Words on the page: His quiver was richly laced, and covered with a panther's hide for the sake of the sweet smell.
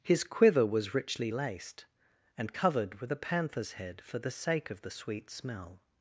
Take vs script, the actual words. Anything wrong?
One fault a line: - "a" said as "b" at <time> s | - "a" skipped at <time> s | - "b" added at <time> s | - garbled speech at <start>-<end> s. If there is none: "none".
- "hide" said as "head" at 3.7 s